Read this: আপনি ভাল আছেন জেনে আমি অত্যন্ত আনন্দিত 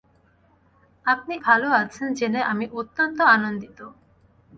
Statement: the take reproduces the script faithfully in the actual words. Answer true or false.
true